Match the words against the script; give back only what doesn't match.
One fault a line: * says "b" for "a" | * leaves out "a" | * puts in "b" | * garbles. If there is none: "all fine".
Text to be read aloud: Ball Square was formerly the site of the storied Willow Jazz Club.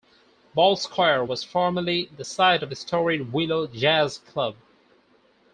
all fine